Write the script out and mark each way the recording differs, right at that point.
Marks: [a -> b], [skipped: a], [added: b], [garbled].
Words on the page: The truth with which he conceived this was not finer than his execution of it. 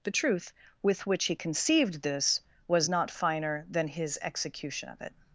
The truth with which he conceived this was not finer than his execution of it.